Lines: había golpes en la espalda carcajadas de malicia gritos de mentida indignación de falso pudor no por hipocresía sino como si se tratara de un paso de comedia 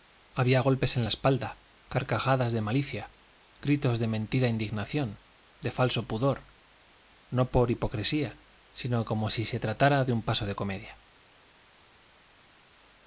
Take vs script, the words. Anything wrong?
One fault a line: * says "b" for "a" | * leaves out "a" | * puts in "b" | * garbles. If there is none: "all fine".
all fine